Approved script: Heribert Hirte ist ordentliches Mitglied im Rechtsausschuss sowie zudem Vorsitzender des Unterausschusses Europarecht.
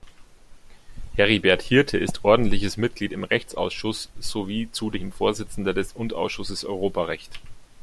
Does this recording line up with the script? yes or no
yes